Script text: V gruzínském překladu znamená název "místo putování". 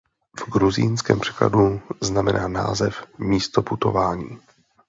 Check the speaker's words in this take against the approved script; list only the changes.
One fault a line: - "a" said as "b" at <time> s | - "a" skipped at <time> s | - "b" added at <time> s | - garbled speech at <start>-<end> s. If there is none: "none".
none